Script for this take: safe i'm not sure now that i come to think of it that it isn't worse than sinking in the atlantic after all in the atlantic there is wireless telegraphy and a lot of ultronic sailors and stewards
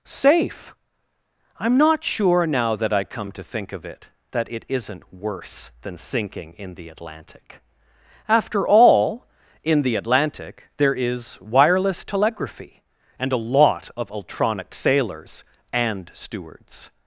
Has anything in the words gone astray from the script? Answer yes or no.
no